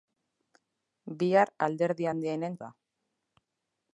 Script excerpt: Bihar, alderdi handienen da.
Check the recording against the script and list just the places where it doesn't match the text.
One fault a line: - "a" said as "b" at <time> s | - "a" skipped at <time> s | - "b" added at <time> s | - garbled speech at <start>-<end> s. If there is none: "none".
none